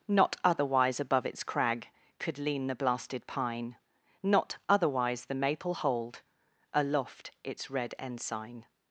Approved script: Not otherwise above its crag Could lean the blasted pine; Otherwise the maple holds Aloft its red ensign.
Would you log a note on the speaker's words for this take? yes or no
yes